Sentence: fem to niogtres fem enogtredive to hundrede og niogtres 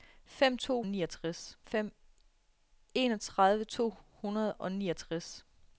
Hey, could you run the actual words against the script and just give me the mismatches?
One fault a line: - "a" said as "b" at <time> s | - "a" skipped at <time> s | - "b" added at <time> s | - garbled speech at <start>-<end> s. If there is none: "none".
none